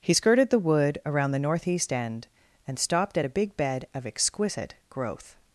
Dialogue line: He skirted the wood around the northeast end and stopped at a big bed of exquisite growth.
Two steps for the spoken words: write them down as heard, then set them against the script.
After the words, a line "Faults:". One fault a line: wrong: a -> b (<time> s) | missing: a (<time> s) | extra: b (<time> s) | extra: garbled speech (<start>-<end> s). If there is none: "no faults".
He skirted the wood around the northeast end and stopped at a big bed of exquisite growth.
Faults:
no faults